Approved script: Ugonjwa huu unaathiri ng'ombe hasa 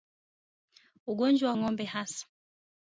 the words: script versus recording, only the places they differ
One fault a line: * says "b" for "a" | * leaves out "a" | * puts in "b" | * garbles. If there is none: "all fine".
* leaves out "huu unaathiri"